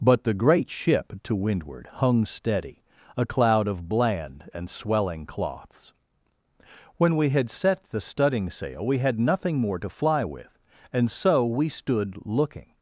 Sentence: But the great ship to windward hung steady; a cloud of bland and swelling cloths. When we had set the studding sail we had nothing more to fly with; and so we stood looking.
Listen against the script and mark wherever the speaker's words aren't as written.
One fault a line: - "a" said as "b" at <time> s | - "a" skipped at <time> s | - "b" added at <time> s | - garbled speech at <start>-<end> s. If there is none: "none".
none